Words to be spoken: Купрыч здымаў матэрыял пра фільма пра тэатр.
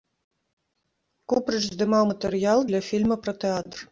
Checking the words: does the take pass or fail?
fail